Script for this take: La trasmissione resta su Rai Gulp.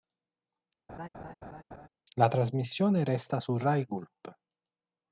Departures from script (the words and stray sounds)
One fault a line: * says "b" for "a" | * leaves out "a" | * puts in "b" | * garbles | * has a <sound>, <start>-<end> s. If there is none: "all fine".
* has a laugh, 0.9-1.9 s